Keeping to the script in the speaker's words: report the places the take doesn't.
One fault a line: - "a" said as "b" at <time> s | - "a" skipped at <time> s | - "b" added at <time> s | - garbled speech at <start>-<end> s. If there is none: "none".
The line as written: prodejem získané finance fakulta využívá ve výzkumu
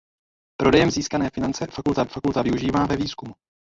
- "fakulta" added at 2.0 s